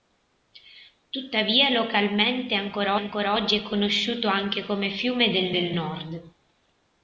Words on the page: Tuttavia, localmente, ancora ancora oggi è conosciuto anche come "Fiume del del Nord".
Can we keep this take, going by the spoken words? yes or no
yes